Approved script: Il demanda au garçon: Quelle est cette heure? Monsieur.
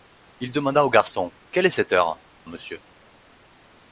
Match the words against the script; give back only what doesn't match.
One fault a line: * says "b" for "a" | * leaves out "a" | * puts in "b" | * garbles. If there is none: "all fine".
all fine